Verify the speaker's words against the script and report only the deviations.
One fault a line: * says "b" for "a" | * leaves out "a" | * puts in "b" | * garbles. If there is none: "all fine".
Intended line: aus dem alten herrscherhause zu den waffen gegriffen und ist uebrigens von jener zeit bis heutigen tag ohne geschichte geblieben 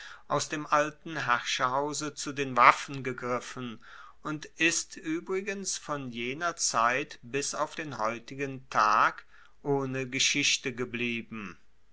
* puts in "auf den"